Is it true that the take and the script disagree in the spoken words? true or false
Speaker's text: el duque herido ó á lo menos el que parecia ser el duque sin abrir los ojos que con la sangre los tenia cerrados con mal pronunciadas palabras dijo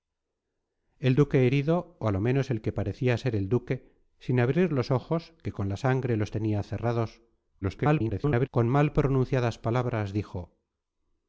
true